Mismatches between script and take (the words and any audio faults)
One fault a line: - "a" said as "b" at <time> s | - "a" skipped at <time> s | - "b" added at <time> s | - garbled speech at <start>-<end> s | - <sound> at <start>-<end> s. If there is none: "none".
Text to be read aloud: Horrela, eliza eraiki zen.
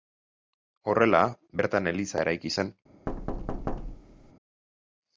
- "bertan" added at 1.6 s
- thud at 3.1-4.3 s